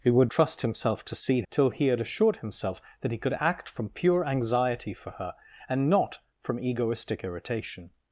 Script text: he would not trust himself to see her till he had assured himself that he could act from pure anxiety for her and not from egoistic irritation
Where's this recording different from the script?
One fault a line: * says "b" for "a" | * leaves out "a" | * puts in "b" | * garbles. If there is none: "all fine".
* leaves out "not"
* leaves out "her"